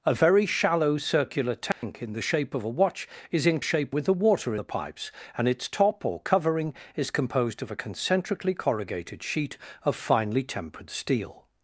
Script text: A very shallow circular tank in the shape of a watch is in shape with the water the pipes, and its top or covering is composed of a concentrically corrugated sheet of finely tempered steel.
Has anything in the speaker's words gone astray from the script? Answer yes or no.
no